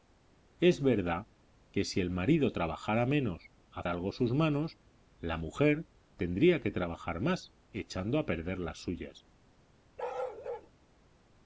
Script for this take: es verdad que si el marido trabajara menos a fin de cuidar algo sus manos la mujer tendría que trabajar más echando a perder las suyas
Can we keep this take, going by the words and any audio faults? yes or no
no